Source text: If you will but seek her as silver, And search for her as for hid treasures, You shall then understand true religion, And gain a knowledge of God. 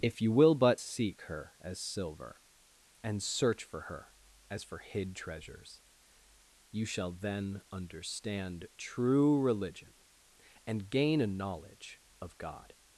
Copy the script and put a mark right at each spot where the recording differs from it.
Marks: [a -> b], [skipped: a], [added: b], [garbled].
If you will but seek her as silver, And search for her as for hid treasures, You shall then understand true religion, And gain a knowledge of God.